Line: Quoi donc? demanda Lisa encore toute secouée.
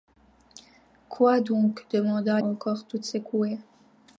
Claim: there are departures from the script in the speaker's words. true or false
true